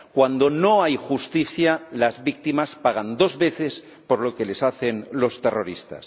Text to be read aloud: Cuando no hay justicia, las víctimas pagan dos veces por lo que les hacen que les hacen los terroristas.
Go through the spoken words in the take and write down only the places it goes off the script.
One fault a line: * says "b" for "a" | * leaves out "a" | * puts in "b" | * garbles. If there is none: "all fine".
* leaves out "que les hacen"